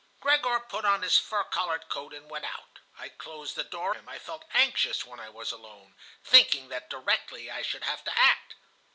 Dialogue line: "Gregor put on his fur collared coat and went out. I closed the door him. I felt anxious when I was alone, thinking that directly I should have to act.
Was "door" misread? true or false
false